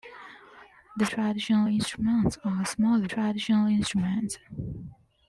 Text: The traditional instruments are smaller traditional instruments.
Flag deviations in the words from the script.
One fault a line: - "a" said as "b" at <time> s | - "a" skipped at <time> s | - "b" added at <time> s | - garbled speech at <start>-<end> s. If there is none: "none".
none